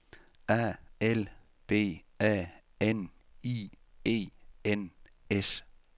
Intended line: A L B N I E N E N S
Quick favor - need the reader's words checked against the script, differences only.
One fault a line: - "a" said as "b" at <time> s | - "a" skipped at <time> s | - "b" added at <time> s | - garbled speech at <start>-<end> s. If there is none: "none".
- "A" added at 2.2 s
- "E N" skipped at 4.9 s